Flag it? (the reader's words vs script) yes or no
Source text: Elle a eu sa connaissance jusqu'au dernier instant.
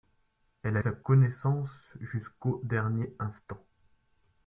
yes